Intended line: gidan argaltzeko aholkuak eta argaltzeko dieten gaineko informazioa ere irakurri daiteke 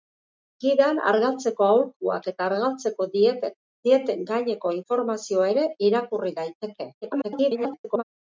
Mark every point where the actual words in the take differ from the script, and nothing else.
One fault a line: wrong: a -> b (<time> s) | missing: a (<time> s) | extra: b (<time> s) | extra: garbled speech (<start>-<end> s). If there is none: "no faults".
extra: garbled speech (7.0-8.0 s)